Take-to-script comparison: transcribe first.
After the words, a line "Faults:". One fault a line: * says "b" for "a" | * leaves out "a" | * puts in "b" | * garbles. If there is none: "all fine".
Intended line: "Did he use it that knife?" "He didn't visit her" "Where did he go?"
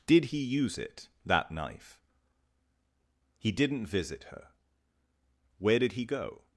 "Did he use it that knife?" "He didn't visit her" "Where did he go?"
Faults:
all fine